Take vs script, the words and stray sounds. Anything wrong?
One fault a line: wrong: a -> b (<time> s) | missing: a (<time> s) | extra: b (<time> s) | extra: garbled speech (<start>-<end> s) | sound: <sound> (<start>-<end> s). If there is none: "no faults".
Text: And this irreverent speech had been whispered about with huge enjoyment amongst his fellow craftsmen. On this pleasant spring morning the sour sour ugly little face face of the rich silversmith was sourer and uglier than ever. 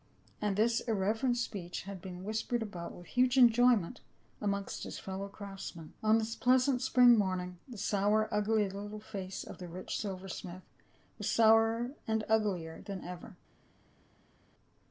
missing: sour (8.3 s)
missing: face (9.4 s)